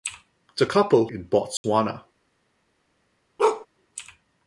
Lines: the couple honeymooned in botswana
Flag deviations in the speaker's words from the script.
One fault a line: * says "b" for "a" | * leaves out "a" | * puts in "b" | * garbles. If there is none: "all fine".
* leaves out "honeymooned"